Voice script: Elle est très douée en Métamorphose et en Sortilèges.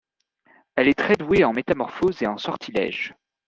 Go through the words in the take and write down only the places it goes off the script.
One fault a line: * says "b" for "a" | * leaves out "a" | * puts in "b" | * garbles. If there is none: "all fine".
all fine